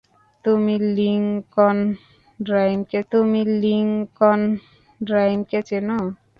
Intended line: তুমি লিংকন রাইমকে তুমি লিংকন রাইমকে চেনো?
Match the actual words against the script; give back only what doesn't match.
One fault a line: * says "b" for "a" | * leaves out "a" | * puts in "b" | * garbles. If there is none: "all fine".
all fine